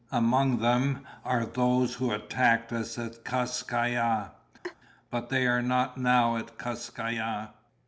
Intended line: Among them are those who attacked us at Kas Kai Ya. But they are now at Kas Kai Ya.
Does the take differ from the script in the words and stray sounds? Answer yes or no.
yes